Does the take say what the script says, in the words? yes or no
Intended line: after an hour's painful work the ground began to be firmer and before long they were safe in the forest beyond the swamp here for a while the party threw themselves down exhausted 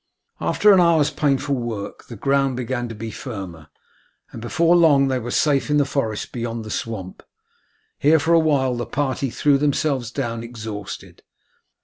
yes